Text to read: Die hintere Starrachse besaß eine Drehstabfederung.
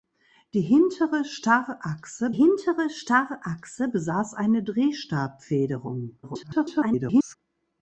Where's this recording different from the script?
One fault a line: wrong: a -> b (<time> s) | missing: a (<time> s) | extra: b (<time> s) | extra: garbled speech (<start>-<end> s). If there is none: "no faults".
extra: hintere Starrachse (2.3 s)
extra: garbled speech (6.2-7.4 s)